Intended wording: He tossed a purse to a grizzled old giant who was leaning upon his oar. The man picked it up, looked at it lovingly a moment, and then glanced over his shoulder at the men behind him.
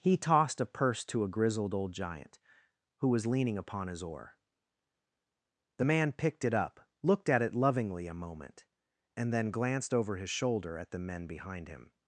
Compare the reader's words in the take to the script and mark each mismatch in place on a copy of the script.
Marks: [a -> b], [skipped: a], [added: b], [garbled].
He tossed a purse to a grizzled old giant who was leaning upon his oar. The man picked it up, looked at it lovingly a moment, and then glanced over his shoulder at the men behind him.